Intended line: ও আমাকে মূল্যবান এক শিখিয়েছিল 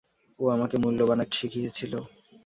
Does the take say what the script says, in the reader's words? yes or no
yes